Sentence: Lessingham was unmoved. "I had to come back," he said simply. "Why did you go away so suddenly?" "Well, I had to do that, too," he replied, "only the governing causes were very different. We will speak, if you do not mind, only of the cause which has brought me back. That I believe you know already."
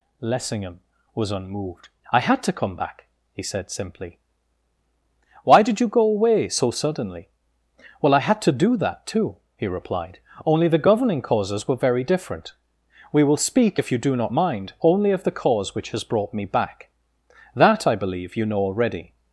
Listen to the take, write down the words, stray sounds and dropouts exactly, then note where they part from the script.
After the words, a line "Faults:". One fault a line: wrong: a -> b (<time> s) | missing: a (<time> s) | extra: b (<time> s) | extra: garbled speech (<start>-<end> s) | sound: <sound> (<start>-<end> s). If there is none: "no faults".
Lessingham was unmoved. "I had to come back," he said simply. "Why did you go away so suddenly?" "Well, I had to do that, too," he replied, "only the governing causes were very different. We will speak, if you do not mind, only of the cause which has brought me back. That I believe you know already."
Faults:
no faults